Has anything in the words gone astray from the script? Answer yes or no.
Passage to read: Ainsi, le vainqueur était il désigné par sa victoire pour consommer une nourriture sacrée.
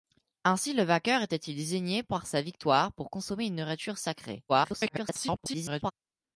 yes